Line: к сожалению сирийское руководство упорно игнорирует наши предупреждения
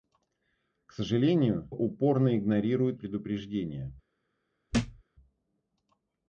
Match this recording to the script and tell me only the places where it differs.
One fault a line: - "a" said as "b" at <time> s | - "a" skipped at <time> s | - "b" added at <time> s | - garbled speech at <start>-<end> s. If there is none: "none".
- "сирийское руководство" skipped at 1.7 s
- "наши" skipped at 3.0 s